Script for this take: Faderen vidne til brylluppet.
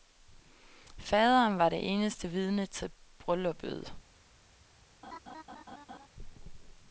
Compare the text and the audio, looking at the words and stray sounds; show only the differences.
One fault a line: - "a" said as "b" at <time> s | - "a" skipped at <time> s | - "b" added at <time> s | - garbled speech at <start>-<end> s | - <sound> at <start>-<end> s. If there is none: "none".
- "var det eneste" added at 1.6 s
- laugh at 5.0-6.1 s